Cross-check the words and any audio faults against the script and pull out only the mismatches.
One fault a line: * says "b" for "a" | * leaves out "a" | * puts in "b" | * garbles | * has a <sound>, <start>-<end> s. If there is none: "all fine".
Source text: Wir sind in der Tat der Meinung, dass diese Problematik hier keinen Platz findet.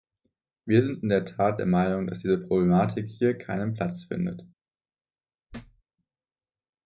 * has a thud, 5.5-5.8 s